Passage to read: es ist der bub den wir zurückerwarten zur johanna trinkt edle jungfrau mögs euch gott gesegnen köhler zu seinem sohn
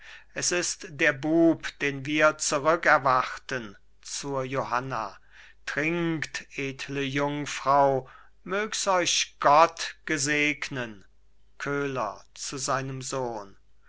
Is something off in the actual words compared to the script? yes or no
no